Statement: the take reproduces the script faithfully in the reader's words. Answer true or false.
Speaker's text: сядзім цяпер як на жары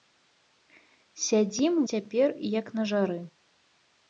true